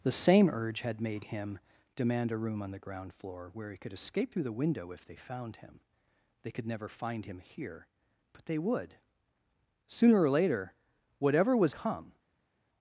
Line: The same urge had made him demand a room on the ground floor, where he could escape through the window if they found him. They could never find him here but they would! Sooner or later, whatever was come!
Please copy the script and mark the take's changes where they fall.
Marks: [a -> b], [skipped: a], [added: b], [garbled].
The same urge had made him demand a room on the ground floor, where he could escape through the window if they found him. They could never find him here but they would! Sooner or later, whatever was come!